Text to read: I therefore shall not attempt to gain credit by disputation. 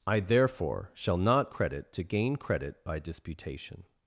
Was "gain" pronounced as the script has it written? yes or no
yes